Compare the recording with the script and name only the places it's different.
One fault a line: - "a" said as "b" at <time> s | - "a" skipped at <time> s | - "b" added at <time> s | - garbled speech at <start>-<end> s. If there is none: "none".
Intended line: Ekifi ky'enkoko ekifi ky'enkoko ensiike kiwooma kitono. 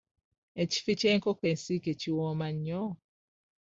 - "ekifi ky'enkoko" skipped at 1.4 s
- "kitono" said as "nnyo" at 2.6 s